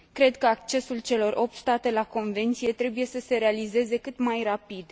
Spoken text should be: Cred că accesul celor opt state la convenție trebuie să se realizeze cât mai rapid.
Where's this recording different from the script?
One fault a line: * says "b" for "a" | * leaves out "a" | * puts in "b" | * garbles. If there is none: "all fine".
all fine